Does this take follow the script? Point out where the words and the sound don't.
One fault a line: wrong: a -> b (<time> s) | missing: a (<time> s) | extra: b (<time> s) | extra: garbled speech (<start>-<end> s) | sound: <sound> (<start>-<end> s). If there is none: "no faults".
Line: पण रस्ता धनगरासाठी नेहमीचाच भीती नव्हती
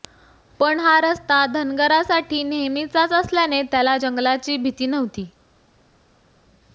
extra: हा (0.8 s)
extra: असल्याने त्याला जंगलाची (3.1 s)